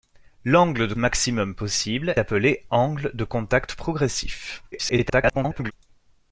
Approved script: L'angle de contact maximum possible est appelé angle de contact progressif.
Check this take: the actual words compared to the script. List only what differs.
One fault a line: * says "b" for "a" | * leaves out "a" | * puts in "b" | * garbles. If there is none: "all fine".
* leaves out "contact"
* leaves out "est"
* garbles